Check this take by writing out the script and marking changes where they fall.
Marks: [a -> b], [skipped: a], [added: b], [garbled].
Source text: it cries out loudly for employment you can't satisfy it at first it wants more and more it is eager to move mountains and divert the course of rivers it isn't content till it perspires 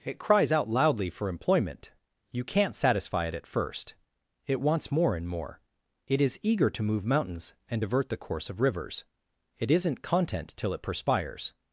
it cries out loudly for employment you can't satisfy it at first it wants more and more it is eager to move mountains and divert the course of rivers it isn't content till it perspires